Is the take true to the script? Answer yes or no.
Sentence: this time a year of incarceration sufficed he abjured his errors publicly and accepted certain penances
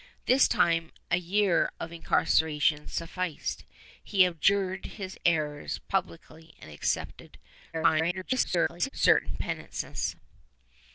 no